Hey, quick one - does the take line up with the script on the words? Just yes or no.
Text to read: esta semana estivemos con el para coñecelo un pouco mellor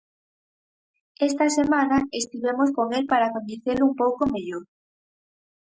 yes